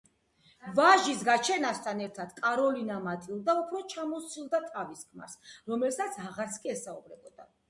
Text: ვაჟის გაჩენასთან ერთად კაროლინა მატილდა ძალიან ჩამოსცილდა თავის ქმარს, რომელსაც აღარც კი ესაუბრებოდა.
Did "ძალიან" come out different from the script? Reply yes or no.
yes